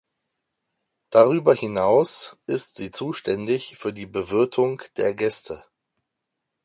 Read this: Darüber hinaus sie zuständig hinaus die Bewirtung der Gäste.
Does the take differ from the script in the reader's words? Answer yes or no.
yes